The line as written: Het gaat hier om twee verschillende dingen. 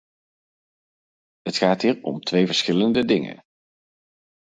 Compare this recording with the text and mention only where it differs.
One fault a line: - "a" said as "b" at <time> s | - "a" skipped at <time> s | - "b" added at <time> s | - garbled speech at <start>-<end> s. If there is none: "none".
none